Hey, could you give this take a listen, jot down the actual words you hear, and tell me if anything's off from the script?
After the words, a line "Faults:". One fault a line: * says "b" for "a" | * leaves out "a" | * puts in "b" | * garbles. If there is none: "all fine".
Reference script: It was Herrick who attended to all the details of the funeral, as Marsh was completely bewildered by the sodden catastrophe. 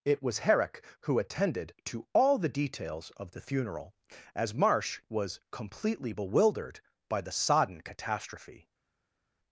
It was Herrick who attended to all the details of the funeral, as Marsh was completely bewildered by the sodden catastrophe.
Faults:
all fine